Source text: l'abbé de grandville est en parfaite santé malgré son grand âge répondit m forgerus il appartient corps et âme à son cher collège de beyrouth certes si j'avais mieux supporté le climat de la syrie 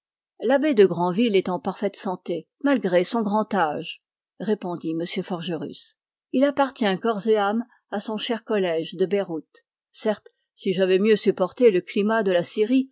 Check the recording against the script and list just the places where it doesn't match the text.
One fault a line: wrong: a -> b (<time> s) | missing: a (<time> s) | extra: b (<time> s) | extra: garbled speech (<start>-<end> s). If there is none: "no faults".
no faults